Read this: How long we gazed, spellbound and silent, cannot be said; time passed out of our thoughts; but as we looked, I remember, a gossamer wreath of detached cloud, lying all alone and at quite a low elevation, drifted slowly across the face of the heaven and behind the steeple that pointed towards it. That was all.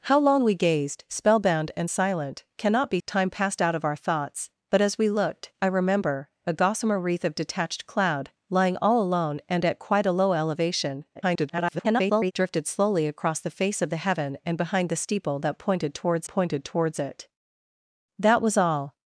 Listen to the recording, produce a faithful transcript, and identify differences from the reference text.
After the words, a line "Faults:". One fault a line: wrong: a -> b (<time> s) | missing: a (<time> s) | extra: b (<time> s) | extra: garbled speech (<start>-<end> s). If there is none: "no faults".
How long we gazed, spellbound and silent, cannot be; time passed out of our thoughts; but as we looked, I remember, a gossamer wreath of detached cloud, lying all alone and at quite a low elevation, [garbled] drifted slowly across the face of the heaven and behind the steeple that pointed towards pointed towards it. That was all.
Faults:
missing: said (3.0 s)
extra: garbled speech (11.1-12.3 s)
extra: pointed towards (16.3 s)